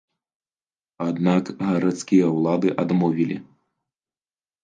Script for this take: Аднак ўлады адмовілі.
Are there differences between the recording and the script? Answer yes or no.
yes